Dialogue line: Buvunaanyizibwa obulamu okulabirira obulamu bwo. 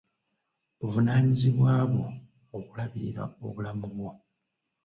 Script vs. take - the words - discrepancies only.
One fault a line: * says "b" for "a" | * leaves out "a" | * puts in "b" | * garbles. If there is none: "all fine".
* says "bwo" for "obulamu"